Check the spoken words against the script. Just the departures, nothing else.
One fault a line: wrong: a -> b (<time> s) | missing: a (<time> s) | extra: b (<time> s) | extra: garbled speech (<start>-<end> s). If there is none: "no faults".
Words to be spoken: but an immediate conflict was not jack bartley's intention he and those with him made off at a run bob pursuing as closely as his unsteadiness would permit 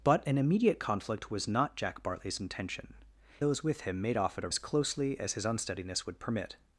missing: he and (3.0 s)
missing: run bob pursuing (4.5 s)